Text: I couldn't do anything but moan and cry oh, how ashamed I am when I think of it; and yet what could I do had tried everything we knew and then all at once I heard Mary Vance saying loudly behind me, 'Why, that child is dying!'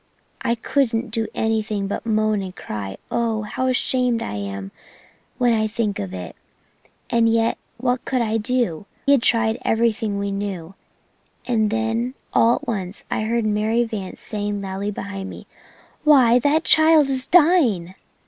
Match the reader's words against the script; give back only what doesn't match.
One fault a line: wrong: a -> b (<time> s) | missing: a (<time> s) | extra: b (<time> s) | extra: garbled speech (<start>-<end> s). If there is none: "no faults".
no faults